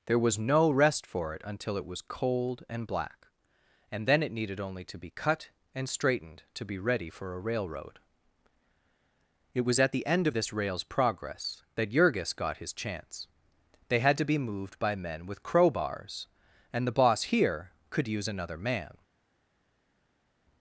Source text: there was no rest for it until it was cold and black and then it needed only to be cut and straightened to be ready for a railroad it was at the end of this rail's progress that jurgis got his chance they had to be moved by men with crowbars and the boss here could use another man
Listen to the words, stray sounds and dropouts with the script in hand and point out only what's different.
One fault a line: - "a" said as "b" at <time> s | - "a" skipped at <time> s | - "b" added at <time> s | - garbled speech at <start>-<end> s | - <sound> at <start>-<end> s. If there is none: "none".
none